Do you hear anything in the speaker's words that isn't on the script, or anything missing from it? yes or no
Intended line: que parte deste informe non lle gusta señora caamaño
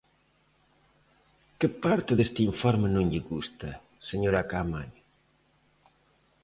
no